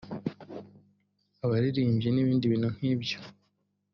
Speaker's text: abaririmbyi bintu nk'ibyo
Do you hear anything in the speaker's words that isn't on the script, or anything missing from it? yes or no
yes